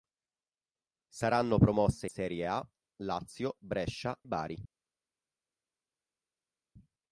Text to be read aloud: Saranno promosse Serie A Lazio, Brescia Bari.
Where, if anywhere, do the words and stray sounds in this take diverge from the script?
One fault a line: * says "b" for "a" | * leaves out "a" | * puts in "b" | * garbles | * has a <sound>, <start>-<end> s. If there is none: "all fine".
all fine